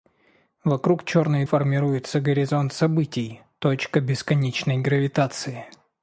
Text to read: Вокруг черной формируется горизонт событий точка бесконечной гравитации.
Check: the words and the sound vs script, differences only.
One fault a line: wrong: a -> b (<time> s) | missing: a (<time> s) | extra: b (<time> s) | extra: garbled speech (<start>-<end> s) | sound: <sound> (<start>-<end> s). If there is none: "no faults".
no faults